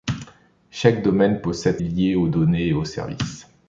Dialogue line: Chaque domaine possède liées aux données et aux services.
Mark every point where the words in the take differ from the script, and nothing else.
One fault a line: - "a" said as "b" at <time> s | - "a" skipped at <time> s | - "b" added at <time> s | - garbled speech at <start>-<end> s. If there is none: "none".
none